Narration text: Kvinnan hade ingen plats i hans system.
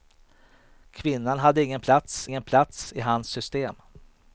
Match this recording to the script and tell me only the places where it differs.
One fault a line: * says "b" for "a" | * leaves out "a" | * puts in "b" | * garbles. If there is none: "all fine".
* puts in "ingen plats"